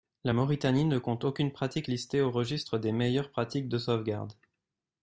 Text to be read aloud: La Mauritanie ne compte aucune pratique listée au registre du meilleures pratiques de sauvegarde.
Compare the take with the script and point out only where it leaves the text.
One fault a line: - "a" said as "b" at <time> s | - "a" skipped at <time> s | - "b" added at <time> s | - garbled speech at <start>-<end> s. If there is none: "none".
- "du" said as "des" at 2.8 s